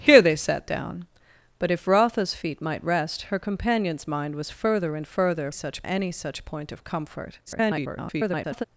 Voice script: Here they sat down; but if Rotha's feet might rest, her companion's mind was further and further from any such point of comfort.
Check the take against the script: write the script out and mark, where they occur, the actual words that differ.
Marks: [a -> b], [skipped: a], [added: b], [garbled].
Here they sat down; but if Rotha's feet might rest, her companion's mind was further and further [from -> such] any such point of comfort. [garbled]